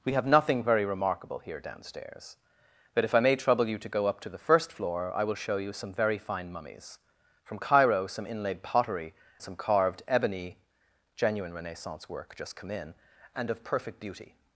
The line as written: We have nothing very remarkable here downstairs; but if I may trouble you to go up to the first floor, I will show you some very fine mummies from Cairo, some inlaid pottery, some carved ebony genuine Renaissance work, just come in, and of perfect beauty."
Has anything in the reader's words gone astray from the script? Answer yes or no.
no